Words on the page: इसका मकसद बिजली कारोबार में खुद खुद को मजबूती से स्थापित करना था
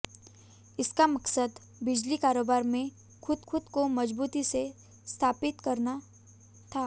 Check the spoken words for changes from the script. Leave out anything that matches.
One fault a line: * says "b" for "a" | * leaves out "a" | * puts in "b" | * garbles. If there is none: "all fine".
all fine